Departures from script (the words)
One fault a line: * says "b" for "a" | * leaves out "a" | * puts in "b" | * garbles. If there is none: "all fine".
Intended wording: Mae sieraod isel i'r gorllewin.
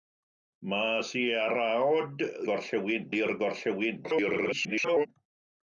* says "gorllewin" for "isel"
* garbles